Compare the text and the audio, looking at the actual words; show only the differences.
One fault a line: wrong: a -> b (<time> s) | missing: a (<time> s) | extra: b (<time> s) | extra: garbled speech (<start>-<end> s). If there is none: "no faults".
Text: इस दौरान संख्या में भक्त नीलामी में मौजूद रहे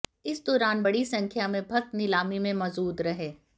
extra: बड़ी (0.8 s)